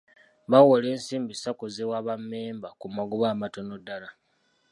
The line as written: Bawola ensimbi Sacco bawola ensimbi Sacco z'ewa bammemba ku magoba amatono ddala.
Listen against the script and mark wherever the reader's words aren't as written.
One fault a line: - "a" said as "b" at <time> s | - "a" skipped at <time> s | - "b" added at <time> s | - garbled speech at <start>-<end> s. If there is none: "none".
- "bawola ensimbi Sacco" skipped at 1.6 s